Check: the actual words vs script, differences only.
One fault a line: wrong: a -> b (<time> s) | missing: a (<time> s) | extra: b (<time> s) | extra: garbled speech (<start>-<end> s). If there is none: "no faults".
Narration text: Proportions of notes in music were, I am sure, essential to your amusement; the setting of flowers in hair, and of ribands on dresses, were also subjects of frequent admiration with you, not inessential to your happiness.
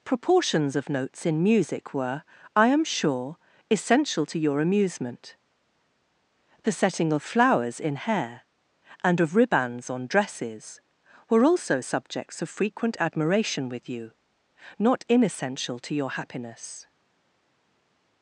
no faults